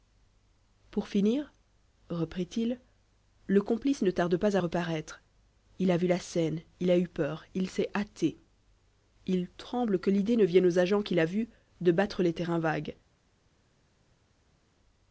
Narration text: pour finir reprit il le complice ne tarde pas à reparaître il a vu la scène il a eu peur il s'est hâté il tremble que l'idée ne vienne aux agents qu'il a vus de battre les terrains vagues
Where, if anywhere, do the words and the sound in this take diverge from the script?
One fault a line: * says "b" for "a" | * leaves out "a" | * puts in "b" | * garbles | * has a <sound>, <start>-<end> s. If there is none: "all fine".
all fine